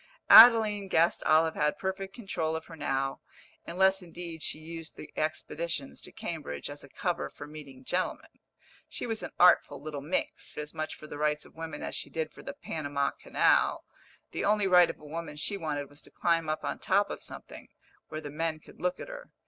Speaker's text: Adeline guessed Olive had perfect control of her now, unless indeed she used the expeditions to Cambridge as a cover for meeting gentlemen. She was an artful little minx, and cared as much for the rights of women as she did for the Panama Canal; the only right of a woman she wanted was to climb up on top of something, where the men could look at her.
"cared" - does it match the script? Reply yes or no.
no